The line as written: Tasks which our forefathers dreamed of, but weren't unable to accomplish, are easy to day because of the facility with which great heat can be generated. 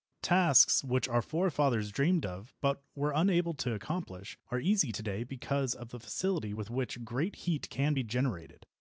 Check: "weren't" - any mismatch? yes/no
yes